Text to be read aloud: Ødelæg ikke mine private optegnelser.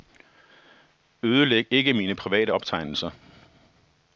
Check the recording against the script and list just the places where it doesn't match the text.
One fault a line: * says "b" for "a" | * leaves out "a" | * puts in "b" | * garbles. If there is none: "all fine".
all fine